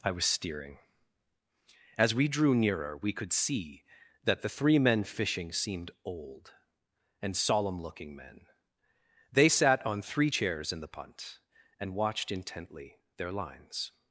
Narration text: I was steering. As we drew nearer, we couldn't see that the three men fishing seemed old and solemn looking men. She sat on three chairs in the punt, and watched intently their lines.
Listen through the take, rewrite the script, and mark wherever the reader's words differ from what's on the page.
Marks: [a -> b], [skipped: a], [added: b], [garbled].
I was steering. As we drew nearer, we [couldn't -> could] see that the three men fishing seemed old and solemn looking men. [She -> They] sat on three chairs in the punt, and watched intently their lines.